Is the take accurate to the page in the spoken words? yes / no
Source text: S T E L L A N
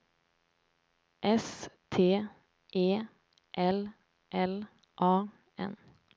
yes